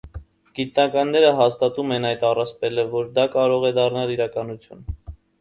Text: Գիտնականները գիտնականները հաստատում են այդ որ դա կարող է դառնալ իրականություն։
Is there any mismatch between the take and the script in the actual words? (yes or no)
yes